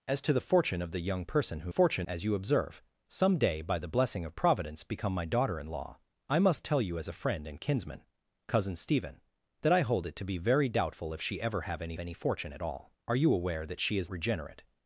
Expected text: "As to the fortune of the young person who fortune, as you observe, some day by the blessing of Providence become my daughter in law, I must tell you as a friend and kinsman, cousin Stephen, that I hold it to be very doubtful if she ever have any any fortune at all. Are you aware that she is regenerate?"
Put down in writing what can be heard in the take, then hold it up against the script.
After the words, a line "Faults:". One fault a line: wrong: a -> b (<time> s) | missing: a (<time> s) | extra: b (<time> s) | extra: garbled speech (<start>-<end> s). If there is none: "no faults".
"As to the fortune of the young person who fortune, as you observe, some day by the blessing of Providence become my daughter in law, I must tell you as a friend and kinsman, cousin Stephen, that I hold it to be very doubtful if she ever have any any fortune at all. Are you aware that she is regenerate?"
Faults:
no faults